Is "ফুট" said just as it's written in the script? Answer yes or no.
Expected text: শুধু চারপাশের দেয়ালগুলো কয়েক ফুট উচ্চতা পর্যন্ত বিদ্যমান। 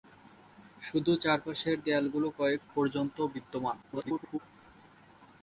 no